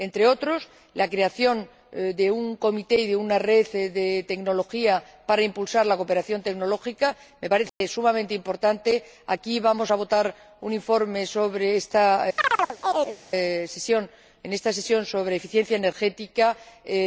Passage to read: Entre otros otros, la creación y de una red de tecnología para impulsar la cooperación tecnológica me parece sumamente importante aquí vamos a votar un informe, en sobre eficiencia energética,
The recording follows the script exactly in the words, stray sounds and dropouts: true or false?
false